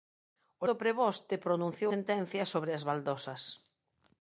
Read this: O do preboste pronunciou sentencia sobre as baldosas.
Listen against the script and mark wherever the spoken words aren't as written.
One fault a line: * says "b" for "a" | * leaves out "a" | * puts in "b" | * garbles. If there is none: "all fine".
all fine